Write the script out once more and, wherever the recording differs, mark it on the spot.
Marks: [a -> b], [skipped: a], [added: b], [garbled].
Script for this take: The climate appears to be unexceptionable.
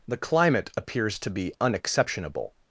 The climate appears to be unexceptionable.